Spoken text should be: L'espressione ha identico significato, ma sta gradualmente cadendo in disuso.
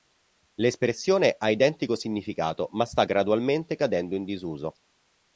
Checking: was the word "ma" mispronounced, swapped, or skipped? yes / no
no